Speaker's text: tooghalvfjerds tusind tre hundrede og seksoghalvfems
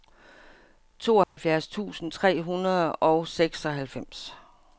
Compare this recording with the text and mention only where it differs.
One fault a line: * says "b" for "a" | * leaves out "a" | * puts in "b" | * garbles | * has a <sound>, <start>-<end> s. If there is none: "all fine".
* has a dropout, 1.2-1.4 s